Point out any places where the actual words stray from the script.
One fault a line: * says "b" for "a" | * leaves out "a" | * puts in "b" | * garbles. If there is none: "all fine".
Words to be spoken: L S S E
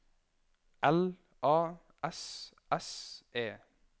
* puts in "A"